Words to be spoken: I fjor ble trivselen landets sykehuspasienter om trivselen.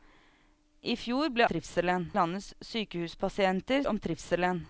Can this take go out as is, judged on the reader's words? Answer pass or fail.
pass